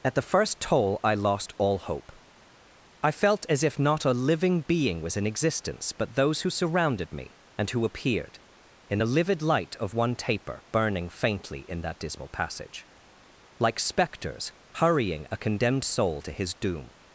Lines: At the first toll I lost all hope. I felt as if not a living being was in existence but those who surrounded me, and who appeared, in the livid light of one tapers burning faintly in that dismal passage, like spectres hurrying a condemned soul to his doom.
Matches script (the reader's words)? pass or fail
fail